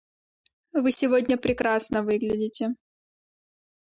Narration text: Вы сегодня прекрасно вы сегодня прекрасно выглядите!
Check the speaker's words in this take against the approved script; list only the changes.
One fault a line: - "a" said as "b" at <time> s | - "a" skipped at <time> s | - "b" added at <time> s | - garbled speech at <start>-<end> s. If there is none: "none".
- "вы сегодня прекрасно" skipped at 2.0 s